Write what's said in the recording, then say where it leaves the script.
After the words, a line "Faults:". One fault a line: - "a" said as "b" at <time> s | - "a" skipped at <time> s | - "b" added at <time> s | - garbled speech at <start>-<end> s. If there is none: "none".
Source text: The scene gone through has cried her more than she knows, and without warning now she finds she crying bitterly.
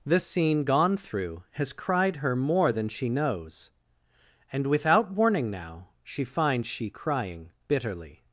The scene gone through has cried her more than she knows, and without warning now she finds she crying bitterly.
Faults:
none